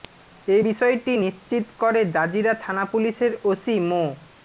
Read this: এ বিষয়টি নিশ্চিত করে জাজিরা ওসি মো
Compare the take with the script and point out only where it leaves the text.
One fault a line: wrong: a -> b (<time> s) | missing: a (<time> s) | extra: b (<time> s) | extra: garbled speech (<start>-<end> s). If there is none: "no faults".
extra: থানা পুলিশের (2.6 s)